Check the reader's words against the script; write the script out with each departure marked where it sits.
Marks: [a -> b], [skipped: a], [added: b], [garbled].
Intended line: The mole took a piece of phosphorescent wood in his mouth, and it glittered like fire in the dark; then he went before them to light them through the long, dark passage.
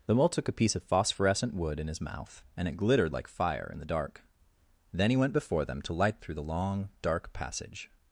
The mole took a piece of phosphorescent wood in his mouth, and it glittered like fire in the dark; then he went before them to light [skipped: them] through the long, dark passage.